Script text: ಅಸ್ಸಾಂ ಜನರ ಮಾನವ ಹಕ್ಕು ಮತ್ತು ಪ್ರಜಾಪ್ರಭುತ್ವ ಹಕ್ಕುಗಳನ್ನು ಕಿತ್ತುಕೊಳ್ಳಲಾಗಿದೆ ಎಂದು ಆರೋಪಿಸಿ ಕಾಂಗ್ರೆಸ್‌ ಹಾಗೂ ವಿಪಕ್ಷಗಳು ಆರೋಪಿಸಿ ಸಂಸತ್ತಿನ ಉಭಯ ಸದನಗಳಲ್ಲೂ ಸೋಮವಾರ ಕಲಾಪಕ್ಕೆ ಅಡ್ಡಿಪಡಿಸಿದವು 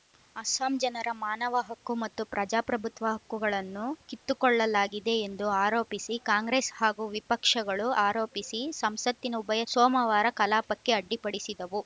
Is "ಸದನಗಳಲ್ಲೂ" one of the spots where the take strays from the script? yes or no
yes